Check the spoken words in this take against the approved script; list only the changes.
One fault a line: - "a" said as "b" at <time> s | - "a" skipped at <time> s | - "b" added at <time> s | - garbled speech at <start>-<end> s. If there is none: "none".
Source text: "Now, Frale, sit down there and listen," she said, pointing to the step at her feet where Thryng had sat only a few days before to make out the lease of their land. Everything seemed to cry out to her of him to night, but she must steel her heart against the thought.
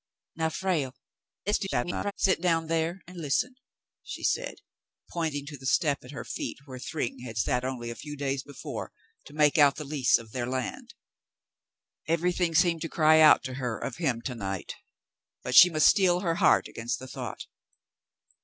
- garbled speech at 1.5-2.1 s